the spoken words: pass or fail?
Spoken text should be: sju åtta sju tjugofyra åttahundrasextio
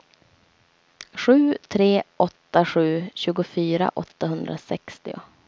fail